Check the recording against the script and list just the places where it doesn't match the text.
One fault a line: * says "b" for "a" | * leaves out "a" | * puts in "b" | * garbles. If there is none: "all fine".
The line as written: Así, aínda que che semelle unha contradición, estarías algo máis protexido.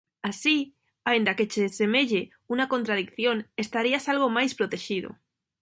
all fine